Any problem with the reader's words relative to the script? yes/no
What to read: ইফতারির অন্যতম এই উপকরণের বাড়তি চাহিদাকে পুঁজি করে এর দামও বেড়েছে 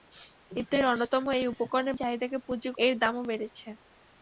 yes